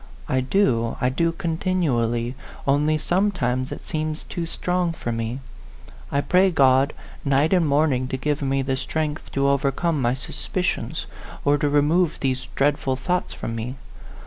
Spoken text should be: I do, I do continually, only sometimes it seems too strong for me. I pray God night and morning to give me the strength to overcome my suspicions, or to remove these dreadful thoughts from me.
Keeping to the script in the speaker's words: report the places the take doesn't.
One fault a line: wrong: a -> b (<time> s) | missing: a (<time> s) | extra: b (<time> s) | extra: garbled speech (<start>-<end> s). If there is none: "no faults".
no faults